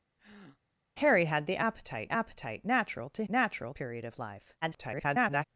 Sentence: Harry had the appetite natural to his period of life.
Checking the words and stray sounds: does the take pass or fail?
fail